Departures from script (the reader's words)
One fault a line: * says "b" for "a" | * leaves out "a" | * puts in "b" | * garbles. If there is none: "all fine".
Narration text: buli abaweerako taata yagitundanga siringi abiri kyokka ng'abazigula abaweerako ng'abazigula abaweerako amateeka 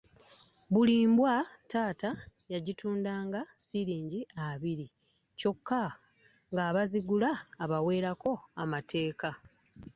* says "mbwa" for "abaweerako"
* leaves out "ng'abazigula abaweerako"